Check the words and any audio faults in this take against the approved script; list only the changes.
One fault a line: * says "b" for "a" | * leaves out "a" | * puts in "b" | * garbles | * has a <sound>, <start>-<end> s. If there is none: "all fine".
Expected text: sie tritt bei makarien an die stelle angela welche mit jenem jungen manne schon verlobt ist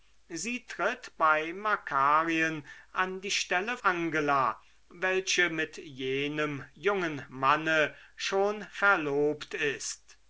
all fine